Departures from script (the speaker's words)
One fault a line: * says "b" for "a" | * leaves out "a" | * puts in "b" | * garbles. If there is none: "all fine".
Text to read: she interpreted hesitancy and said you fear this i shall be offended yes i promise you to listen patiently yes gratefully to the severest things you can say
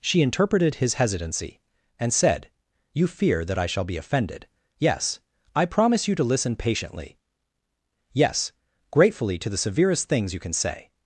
* puts in "his"
* says "that" for "this"